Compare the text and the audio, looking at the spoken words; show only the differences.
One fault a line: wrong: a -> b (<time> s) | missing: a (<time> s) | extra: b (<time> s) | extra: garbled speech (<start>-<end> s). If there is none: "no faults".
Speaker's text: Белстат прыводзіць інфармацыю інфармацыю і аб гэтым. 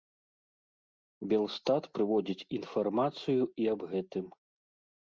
missing: інфармацыю (3.4 s)